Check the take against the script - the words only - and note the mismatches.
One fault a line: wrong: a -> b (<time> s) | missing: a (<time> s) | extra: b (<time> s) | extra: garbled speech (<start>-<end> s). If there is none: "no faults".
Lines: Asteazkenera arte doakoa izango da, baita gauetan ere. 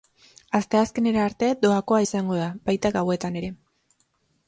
no faults